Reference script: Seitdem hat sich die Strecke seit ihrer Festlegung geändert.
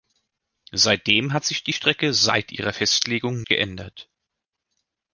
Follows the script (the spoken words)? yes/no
yes